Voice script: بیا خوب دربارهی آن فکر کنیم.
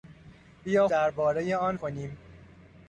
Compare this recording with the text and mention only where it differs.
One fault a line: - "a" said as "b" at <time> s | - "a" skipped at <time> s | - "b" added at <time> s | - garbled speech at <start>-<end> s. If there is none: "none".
- "خوب" skipped at 0.9 s
- "فکر" skipped at 1.8 s